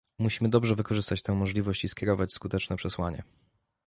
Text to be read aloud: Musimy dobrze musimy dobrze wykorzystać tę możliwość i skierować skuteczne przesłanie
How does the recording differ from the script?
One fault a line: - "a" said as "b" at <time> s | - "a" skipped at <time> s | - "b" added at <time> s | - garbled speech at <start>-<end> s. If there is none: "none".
- "musimy dobrze" skipped at 0.8 s